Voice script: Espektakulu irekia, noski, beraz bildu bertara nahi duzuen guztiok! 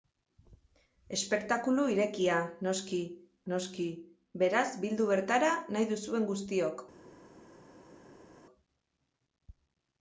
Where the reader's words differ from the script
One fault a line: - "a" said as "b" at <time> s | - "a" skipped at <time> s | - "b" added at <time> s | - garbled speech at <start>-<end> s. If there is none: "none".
- "noski" added at 3.5 s